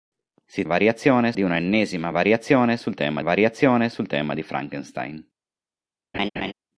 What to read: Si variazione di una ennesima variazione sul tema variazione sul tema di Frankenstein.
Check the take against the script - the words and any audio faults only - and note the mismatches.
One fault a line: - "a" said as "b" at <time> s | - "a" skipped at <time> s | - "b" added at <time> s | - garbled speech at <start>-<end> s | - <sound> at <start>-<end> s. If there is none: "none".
- laugh at 6.1-6.5 s